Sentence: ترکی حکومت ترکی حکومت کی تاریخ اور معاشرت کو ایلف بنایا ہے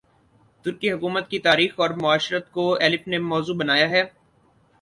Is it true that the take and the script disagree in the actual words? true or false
true